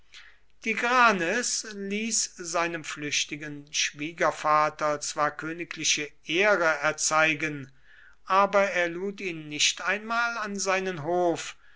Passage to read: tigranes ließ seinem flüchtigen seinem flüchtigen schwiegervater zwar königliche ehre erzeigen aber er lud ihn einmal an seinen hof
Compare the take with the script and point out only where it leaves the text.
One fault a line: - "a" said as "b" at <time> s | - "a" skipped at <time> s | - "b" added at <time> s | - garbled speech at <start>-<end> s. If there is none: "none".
- "seinem flüchtigen" skipped at 3.7 s
- "nicht" added at 9.5 s